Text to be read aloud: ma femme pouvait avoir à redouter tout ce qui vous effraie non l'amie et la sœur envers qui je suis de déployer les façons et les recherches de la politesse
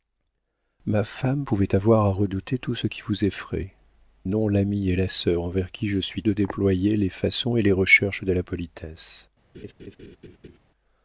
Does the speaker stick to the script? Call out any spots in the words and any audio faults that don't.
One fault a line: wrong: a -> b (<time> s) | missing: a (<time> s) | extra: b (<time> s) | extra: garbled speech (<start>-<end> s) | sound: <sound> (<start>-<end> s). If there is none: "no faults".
sound: laugh (9.5-10.6 s)